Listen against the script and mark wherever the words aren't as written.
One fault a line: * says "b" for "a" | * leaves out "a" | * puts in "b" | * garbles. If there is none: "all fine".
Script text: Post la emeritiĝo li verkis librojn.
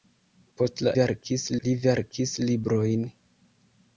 * says "verkis" for "emeritiĝo"